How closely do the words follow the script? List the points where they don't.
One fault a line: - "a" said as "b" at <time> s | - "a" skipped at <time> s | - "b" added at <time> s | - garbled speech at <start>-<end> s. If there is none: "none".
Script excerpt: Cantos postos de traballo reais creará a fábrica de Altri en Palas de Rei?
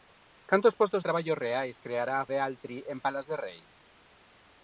- "de" skipped at 1.0 s
- "fábrica" skipped at 2.3 s